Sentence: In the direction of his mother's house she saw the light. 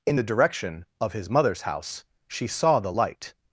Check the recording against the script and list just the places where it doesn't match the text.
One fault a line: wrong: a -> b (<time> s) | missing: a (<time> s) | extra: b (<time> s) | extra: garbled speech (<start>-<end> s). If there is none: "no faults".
no faults